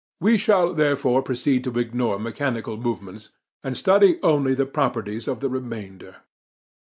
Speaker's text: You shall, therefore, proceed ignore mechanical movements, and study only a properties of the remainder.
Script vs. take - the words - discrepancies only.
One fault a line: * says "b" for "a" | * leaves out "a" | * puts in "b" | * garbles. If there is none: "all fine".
* says "We" for "You"
* puts in "to"
* says "the" for "a"